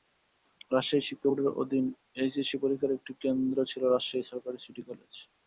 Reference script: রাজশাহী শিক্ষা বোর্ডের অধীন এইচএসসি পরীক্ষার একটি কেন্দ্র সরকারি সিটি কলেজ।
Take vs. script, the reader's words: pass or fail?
fail